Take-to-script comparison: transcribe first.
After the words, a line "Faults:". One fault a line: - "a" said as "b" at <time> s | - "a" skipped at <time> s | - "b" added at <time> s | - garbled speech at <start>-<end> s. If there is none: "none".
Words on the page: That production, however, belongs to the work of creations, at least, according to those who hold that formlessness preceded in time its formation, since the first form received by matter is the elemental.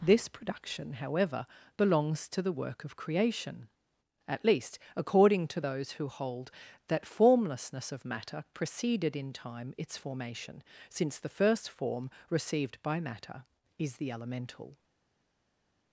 This production, however, belongs to the work of creation, at least, according to those who hold that formlessness of matter preceded in time its formation, since the first form received by matter is the elemental.
Faults:
- "That" said as "This" at 0.0 s
- "creations" said as "creation" at 3.0 s
- "of matter" added at 7.9 s